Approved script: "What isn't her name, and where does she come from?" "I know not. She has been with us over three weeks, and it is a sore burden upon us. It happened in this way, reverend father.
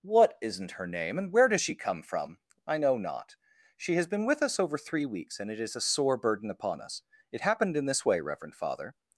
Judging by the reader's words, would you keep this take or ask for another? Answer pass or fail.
pass